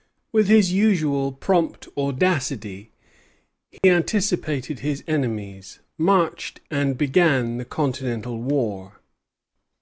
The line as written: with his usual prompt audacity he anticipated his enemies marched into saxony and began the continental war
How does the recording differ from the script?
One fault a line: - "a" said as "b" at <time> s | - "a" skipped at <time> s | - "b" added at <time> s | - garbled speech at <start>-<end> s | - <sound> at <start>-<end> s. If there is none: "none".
- dropout at 3.8-3.8 s
- "into saxony" skipped at 6.6 s